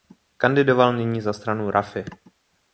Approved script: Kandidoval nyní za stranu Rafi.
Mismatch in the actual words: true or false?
false